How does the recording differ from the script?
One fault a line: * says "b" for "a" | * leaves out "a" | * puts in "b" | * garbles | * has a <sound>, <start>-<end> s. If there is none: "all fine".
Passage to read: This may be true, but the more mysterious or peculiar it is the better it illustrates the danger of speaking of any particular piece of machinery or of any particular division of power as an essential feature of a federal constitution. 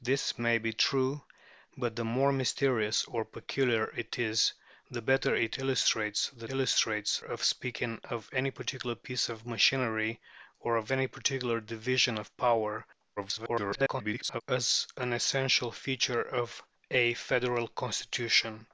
* says "illustrates" for "danger"
* garbles